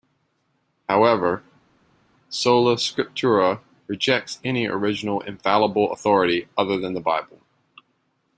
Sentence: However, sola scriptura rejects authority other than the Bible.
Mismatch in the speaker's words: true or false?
true